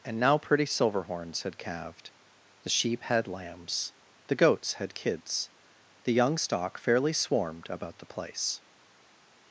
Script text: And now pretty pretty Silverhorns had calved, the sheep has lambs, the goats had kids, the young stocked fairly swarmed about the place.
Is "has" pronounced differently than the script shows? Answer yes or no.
yes